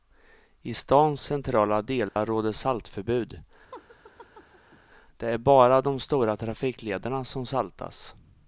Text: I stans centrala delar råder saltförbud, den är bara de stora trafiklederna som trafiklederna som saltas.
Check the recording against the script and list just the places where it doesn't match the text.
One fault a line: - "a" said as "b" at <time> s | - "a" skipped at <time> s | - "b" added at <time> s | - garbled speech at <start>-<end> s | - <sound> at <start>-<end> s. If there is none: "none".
- dropout at 2.1-2.2 s
- laugh at 3.7-4.8 s
- "den" said as "det" at 5.2 s
- "trafiklederna som" skipped at 7.4 s